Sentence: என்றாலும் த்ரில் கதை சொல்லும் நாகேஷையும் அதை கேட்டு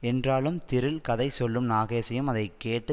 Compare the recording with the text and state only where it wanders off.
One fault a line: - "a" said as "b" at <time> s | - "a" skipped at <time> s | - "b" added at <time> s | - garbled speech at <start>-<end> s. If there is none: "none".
none